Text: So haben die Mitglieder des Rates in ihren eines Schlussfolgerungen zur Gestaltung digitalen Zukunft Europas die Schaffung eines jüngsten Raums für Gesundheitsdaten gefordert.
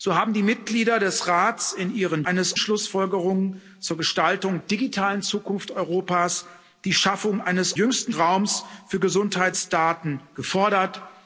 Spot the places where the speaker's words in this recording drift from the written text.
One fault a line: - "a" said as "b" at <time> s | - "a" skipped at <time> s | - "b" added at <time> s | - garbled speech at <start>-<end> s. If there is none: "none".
none